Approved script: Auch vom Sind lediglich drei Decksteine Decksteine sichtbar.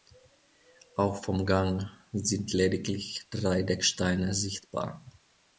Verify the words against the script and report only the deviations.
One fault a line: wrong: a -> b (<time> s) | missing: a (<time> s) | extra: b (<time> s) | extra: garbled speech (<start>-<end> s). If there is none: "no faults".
extra: Gang (1.4 s)
missing: Decksteine (4.3 s)